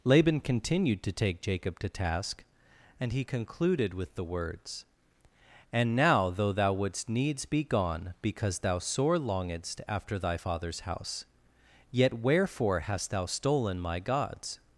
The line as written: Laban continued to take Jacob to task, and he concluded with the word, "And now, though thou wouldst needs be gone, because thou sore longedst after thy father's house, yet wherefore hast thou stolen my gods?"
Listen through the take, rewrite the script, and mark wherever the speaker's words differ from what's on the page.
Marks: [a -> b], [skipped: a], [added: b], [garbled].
Laban continued to take Jacob to task, and he concluded with the [word, -> words] "And now, though thou wouldst needs be gone, because thou sore longedst after thy father's house, yet wherefore hast thou stolen my gods?"